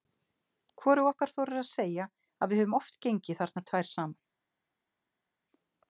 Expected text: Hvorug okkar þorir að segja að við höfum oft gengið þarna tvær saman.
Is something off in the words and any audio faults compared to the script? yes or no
no